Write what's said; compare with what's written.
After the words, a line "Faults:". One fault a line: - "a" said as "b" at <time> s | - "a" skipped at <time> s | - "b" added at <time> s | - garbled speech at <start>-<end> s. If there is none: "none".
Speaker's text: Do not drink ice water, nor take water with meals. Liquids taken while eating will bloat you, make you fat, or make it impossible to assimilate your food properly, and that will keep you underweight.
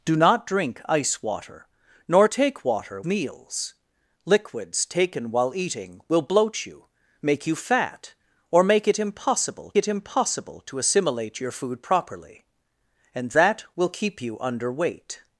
Do not drink ice water, nor take water meals. Liquids taken while eating will bloat you, make you fat, or make it impossible it impossible to assimilate your food properly, and that will keep you underweight.
Faults:
- "with" skipped at 3.0 s
- "it impossible" added at 9.8 s